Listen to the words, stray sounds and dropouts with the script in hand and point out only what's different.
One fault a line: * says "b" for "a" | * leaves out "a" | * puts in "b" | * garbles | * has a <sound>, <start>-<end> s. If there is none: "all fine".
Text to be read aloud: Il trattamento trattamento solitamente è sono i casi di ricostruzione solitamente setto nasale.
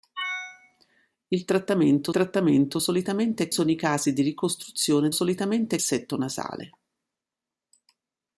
all fine